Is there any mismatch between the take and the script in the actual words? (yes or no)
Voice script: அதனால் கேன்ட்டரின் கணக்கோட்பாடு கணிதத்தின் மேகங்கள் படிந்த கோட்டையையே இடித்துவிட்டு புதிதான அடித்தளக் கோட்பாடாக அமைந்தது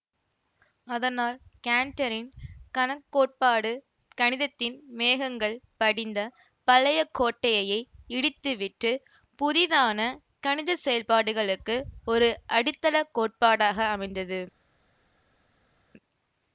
yes